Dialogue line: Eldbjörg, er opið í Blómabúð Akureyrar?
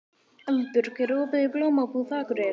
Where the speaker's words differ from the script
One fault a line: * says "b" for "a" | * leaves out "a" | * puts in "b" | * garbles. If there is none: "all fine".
all fine